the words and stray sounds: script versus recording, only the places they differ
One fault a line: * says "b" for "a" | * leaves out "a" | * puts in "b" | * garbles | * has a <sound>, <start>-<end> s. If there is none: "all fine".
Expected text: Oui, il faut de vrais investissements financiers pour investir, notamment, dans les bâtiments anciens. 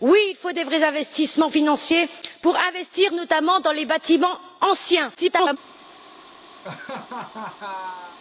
* garbles
* has a laugh, 6.6-8.2 s